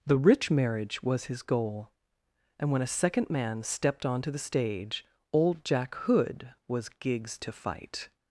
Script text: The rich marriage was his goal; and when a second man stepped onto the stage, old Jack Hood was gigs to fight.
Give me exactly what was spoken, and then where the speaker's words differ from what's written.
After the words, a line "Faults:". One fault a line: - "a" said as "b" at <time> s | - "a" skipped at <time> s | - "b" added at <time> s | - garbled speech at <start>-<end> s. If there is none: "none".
The rich marriage was his goal; and when a second man stepped onto the stage, old Jack Hood was gigs to fight.
Faults:
none